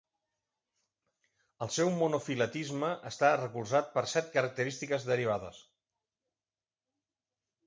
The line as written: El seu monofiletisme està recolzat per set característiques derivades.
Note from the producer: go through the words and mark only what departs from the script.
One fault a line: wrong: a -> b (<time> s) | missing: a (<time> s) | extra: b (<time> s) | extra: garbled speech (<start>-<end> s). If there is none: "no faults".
no faults